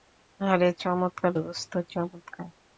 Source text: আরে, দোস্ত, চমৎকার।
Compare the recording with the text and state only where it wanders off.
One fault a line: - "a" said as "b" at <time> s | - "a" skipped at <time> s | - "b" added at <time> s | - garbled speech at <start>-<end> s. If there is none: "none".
- "চমৎকার" added at 0.8 s